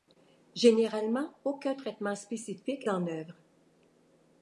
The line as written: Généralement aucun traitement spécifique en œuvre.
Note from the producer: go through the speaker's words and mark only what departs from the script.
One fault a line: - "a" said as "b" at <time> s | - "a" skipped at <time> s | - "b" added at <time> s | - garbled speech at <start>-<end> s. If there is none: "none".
none